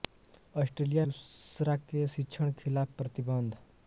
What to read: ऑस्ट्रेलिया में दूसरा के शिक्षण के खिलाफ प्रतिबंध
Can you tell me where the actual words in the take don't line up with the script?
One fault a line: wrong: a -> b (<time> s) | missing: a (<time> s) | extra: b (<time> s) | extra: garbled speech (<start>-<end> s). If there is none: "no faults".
missing: में (1.1 s)
missing: के (2.5 s)